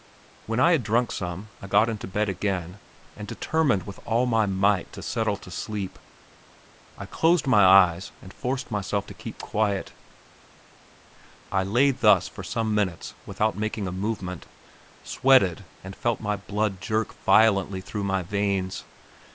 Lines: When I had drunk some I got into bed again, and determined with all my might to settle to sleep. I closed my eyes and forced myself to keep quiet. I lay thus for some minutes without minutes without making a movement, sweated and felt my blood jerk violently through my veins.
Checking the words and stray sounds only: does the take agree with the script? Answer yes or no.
no